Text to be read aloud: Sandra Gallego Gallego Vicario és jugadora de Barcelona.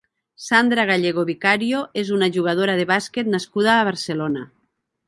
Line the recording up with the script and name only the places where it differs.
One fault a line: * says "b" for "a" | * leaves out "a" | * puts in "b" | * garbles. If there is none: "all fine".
* leaves out "Gallego"
* puts in "una"
* puts in "bàsquet nascuda a"